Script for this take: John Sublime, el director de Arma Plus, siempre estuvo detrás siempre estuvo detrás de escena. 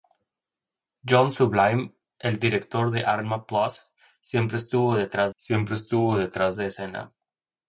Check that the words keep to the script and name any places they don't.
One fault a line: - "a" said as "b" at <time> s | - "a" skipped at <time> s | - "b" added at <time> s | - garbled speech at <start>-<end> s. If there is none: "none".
none